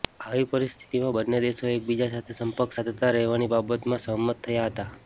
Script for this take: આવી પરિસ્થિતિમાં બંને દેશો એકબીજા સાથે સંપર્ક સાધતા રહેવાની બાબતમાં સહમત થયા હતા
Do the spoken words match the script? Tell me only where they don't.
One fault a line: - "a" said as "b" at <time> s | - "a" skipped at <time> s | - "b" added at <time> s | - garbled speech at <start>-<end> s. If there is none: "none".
none